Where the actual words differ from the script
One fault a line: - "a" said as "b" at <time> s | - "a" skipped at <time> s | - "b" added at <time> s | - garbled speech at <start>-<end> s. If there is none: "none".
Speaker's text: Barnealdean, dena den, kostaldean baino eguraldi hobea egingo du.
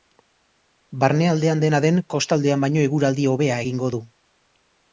none